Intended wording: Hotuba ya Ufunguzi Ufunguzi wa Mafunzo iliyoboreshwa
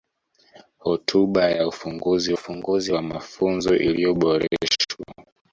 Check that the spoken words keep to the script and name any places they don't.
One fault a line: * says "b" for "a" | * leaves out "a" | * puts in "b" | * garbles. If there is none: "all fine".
all fine